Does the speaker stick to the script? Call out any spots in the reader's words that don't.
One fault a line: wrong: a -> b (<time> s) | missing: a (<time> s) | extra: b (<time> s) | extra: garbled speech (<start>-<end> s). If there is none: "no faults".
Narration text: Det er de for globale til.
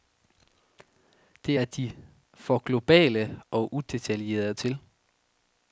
extra: og udetaljerede (3.5 s)